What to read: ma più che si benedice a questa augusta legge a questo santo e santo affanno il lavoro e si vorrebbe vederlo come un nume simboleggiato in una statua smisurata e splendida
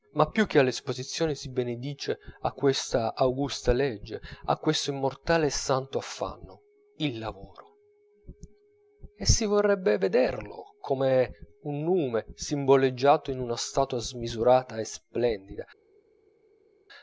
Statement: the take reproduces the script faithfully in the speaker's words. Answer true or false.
false